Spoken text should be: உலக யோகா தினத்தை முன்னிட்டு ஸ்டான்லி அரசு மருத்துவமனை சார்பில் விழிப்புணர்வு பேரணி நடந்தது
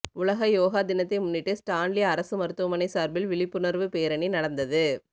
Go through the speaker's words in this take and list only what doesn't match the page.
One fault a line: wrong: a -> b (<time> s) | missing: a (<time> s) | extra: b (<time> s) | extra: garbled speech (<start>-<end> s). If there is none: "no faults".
no faults